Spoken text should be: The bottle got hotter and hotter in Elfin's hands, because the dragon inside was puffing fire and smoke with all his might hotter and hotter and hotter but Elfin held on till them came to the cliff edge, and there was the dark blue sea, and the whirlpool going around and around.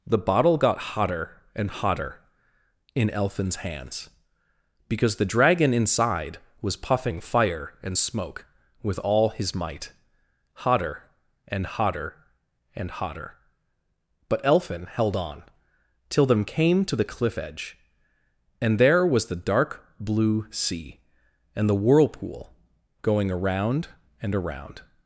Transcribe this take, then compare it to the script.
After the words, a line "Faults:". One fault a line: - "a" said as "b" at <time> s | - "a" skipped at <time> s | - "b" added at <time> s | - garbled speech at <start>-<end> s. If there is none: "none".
The bottle got hotter and hotter in Elfin's hands, because the dragon inside was puffing fire and smoke with all his might hotter and hotter and hotter but Elfin held on till them came to the cliff edge, and there was the dark blue sea, and the whirlpool going around and around.
Faults:
none